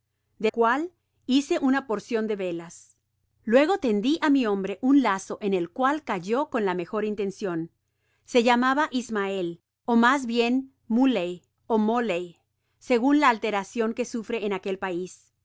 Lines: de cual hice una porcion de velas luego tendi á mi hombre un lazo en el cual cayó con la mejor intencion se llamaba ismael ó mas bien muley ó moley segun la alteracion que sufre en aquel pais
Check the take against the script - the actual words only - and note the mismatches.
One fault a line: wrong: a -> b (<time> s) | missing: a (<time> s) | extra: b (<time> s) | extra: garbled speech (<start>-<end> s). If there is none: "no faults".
no faults